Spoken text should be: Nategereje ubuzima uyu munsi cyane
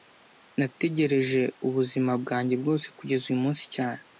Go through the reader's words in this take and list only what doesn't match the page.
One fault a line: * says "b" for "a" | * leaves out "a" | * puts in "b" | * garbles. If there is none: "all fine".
* puts in "bwanjye bwose kugeza"